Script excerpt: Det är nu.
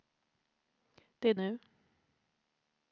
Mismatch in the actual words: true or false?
false